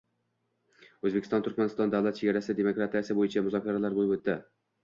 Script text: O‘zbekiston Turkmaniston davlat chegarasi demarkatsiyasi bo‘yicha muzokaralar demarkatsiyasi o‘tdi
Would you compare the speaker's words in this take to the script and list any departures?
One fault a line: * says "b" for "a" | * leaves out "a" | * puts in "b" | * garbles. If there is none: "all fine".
* says "bo‘lib" for "demarkatsiyasi"